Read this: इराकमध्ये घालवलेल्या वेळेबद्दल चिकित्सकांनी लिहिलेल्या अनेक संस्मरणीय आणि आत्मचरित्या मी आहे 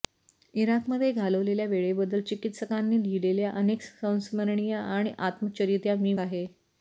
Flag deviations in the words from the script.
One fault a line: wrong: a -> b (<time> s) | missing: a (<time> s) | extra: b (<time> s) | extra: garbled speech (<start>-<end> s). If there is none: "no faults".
no faults